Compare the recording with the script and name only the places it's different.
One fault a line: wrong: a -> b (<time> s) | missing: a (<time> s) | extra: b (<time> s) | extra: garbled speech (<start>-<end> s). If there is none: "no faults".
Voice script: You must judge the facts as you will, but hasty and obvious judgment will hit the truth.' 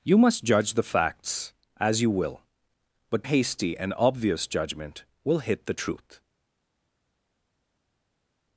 no faults